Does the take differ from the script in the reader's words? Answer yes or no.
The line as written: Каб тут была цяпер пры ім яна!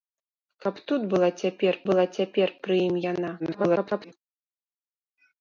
yes